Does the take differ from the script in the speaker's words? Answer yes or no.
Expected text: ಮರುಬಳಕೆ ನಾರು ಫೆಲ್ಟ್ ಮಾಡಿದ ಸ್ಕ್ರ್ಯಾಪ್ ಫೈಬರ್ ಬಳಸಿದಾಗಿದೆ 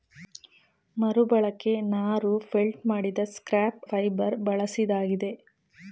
no